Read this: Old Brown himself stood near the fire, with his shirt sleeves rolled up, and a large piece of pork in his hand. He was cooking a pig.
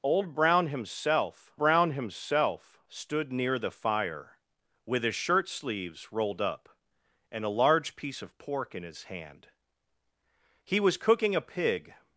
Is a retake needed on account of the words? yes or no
yes